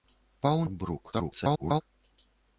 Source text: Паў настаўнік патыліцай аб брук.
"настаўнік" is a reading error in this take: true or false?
true